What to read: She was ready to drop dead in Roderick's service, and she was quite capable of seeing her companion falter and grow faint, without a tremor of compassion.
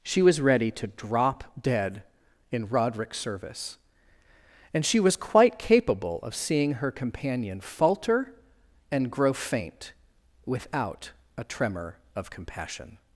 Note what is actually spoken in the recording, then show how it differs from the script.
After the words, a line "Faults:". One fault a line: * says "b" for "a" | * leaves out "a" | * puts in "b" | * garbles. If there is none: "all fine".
She was ready to drop dead in Roderick's service, and she was quite capable of seeing her companion falter and grow faint, without a tremor of compassion.
Faults:
all fine